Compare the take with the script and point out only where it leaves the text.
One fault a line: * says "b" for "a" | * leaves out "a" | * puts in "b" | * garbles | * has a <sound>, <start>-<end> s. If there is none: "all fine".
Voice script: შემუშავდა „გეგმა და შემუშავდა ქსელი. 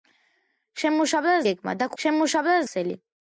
all fine